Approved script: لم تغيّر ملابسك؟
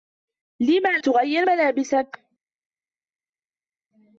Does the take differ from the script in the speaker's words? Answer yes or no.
no